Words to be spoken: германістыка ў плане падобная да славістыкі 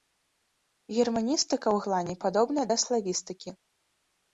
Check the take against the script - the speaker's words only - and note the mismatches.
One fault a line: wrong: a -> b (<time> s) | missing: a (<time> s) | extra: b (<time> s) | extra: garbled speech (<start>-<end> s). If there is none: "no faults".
no faults